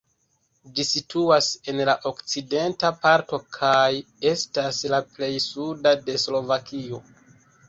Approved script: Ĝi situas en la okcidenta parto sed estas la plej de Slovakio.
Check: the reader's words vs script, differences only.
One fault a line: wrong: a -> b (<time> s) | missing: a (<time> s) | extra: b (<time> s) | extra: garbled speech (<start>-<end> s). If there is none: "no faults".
wrong: sed -> kaj (3.6 s)
extra: suda (5.5 s)